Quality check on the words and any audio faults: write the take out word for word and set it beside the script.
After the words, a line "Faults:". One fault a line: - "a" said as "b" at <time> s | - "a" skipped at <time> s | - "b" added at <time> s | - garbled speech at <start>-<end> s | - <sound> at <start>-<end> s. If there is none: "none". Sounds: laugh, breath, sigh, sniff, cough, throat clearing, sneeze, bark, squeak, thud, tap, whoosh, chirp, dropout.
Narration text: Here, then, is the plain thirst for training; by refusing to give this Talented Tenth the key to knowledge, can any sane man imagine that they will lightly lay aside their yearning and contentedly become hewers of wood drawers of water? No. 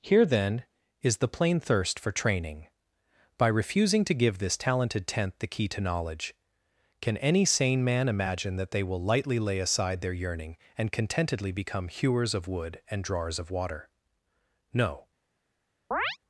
Here, then, is the plain thirst for training; by refusing to give this Talented Tenth the key to knowledge, can any sane man imagine that they will lightly lay aside their yearning and contentedly become hewers of wood and drawers of water? No.
Faults:
- "and" added at 12.9 s
- chirp at 15.9-16.2 s